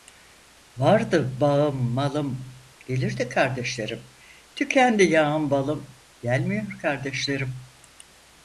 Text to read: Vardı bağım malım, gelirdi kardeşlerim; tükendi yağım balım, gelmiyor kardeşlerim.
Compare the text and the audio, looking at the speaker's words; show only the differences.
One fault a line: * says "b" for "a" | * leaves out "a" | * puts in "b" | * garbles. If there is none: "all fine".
all fine